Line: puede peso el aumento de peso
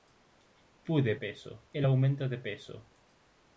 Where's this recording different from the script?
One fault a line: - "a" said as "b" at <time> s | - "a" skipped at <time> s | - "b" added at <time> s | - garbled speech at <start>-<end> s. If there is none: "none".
none